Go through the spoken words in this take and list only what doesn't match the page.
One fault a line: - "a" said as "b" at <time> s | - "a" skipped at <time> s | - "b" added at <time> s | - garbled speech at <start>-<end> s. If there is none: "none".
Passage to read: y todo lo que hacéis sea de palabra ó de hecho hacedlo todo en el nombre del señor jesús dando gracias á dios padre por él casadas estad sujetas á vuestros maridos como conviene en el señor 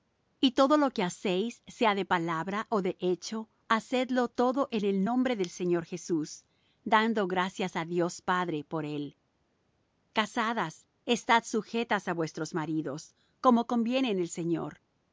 none